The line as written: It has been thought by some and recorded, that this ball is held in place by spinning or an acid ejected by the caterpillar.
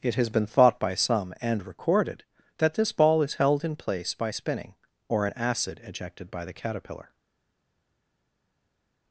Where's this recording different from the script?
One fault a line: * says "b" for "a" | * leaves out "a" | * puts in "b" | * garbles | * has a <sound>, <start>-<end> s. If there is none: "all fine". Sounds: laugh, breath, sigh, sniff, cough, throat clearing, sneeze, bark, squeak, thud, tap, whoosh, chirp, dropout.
all fine